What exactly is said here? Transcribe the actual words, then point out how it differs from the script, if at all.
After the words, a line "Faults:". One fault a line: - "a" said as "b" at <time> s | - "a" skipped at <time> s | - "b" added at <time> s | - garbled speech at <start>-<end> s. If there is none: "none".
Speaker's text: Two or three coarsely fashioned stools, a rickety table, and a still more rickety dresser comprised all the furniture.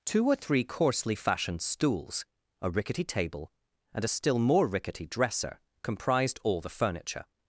Two or three coarsely fashioned stools, a rickety table, and a still more rickety dresser comprised all the furniture.
Faults:
none